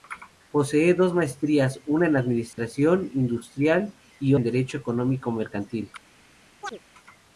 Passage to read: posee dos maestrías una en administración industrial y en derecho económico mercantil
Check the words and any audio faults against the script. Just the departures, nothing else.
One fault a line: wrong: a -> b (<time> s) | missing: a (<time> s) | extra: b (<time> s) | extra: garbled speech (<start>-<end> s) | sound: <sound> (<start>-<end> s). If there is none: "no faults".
sound: dropout (2.5-2.6 s)
sound: chirp (6.6-6.8 s)